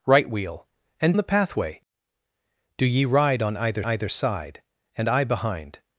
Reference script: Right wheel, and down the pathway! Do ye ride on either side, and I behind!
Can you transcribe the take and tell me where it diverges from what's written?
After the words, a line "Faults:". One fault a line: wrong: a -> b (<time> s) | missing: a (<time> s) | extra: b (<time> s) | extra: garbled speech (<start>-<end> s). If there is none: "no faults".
Right wheel, and the pathway! Do ye ride on either either side, and I behind!
Faults:
missing: down (1.1 s)
extra: either (3.8 s)